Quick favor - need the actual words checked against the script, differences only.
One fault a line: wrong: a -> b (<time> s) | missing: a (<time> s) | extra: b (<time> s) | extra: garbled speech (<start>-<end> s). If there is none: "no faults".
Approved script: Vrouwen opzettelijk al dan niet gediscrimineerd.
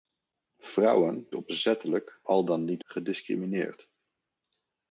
no faults